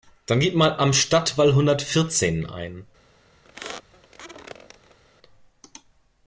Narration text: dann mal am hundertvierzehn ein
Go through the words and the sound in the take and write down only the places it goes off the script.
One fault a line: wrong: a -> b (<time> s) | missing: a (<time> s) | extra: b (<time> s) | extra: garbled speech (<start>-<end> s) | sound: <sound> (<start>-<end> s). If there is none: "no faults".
extra: gib (0.4 s)
extra: stadtwall (0.9 s)
sound: squeak (3.4-5.0 s)